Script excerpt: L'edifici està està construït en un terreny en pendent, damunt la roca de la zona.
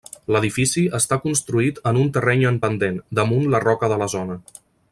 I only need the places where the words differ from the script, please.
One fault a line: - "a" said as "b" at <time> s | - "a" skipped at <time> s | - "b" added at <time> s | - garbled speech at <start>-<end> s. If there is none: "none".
- "està" skipped at 1.2 s